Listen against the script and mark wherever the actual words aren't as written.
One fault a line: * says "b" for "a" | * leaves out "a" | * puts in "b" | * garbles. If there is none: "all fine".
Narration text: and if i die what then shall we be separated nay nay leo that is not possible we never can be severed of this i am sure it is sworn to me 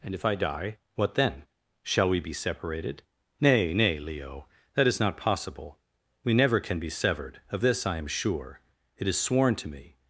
all fine